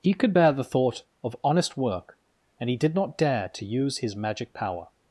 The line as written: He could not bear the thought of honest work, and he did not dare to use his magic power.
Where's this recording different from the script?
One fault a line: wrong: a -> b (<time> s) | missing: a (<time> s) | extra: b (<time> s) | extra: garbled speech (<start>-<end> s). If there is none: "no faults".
missing: not (0.3 s)